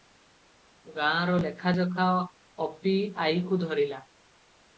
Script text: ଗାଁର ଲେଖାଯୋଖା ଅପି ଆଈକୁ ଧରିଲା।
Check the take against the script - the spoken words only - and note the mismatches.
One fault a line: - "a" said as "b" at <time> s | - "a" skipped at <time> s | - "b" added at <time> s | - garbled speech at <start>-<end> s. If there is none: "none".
none